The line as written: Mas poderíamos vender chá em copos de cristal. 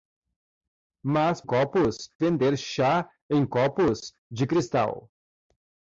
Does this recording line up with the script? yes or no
no